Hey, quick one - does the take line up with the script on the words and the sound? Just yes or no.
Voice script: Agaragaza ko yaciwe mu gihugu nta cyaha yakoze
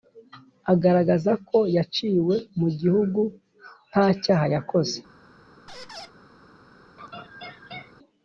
no